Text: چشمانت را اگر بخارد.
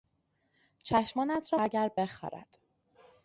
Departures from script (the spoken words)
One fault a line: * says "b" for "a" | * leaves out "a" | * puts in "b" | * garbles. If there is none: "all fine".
all fine